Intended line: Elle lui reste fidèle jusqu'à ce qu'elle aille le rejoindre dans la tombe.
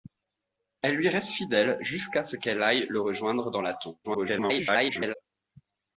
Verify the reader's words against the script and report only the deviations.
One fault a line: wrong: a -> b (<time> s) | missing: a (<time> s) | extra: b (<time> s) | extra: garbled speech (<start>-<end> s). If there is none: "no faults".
extra: garbled speech (4.0-5.1 s)